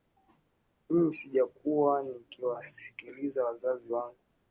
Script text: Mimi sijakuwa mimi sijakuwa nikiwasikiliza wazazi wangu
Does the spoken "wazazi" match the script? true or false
true